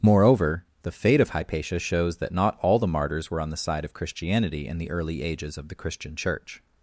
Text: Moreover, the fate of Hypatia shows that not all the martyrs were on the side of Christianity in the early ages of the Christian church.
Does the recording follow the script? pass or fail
pass